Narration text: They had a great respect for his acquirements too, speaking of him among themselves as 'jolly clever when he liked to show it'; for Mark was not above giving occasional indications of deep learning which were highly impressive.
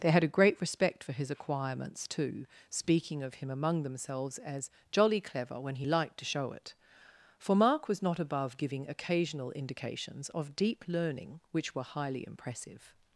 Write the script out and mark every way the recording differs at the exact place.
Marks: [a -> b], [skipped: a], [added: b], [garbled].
They had a great respect for his acquirements too, speaking of him among themselves as 'jolly clever when he liked to show it'; for Mark was not above giving occasional indications of deep learning which were highly impressive.